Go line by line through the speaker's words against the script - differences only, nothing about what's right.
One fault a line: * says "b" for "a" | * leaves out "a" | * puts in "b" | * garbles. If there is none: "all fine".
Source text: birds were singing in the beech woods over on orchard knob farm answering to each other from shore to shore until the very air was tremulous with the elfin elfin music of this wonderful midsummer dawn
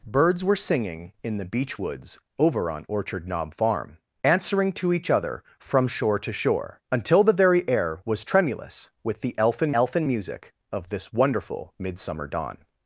all fine